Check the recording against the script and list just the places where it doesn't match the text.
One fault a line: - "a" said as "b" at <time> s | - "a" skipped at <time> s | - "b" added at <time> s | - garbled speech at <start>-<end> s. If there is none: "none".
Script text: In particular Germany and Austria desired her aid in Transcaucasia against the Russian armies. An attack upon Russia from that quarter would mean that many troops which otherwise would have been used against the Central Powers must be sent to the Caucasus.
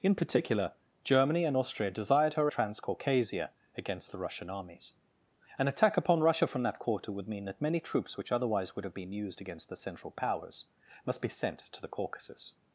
- "aid in" skipped at 2.5 s